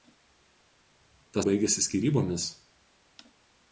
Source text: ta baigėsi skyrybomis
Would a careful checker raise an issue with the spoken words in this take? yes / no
no